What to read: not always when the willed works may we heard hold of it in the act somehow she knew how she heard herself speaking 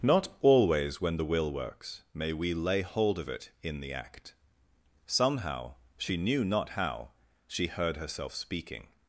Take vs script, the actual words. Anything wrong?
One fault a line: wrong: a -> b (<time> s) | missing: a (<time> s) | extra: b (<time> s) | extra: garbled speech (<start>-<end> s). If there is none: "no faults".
wrong: willed -> will (1.3 s)
wrong: heard -> lay (2.5 s)
extra: not (6.4 s)